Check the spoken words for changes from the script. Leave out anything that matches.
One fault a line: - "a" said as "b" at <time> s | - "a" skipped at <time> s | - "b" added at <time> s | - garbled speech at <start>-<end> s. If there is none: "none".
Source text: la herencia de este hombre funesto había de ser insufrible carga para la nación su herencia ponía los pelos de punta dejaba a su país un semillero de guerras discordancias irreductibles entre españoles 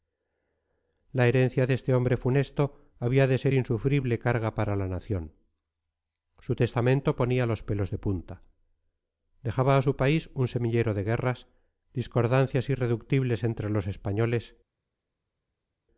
- "herencia" said as "testamento" at 6.5 s
- "los" added at 13.7 s